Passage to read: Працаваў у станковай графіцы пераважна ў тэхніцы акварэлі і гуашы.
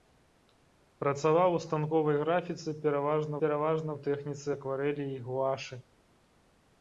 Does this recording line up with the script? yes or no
no